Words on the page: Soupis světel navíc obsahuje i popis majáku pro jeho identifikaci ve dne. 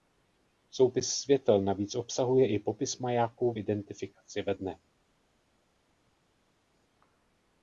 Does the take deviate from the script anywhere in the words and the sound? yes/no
yes